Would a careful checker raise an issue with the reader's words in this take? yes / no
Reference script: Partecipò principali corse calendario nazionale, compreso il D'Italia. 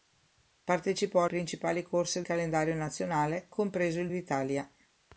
no